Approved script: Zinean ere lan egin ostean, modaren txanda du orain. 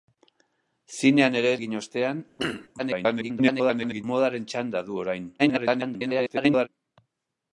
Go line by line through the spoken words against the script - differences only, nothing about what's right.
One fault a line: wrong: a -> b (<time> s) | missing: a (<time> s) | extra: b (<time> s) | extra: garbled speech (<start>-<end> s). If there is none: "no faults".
missing: lan (1.5 s)
extra: garbled speech (2.8-4.0 s)
extra: garbled speech (5.4-6.7 s)